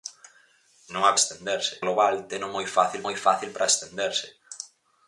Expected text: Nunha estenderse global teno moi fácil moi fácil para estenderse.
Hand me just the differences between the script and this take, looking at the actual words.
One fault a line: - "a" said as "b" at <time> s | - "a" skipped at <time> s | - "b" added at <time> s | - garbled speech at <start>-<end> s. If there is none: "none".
none